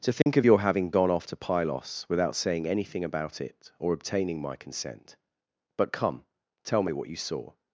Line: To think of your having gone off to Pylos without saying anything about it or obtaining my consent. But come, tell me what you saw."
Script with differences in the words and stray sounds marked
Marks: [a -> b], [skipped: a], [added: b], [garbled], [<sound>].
To think [dropout] of your having gone off to Pylos without saying anything about it or obtaining my consent. But come, tell me what you saw."